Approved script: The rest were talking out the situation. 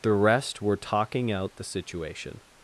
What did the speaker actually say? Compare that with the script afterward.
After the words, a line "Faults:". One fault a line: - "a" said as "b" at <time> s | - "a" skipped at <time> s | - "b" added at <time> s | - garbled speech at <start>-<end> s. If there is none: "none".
The rest were talking out the situation.
Faults:
none